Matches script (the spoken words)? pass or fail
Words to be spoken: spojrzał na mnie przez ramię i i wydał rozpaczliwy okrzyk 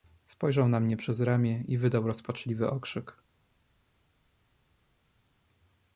fail